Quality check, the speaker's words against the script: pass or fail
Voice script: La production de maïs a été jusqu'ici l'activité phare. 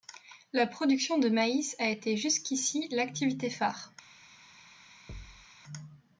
pass